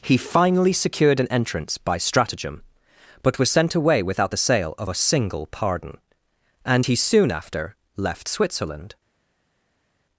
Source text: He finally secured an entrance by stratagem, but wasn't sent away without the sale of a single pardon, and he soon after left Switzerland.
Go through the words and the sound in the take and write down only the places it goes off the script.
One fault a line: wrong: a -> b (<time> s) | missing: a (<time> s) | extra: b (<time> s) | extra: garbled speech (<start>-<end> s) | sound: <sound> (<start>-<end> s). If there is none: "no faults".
wrong: wasn't -> was (3.4 s)